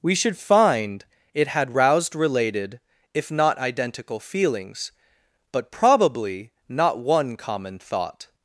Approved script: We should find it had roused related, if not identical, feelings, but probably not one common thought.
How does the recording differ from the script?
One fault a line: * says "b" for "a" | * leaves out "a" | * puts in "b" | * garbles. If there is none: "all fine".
all fine